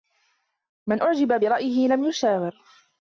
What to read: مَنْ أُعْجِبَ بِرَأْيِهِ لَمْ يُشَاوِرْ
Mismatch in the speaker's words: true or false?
false